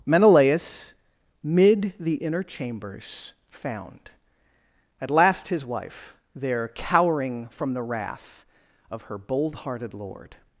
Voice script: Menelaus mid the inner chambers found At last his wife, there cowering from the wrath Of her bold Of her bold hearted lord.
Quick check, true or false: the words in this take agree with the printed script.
false